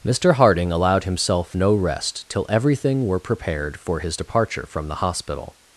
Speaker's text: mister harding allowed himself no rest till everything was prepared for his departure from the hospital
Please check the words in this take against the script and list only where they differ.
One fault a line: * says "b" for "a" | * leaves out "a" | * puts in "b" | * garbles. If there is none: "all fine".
* says "were" for "was"